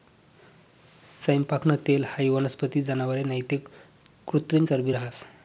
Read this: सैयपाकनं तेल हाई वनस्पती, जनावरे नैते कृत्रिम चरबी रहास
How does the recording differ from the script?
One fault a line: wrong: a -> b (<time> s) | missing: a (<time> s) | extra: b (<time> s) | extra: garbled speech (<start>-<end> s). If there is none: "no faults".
no faults